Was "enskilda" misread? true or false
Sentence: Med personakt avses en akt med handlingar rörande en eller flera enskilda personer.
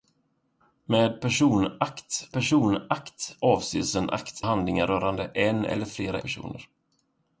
true